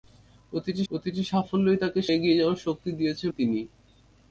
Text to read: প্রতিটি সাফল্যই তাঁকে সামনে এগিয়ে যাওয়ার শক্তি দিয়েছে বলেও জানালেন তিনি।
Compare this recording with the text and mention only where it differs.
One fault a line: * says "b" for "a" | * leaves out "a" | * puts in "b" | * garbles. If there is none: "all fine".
* puts in "প্রতিটি"
* leaves out "সামনে"
* leaves out "বলেও জানালেন"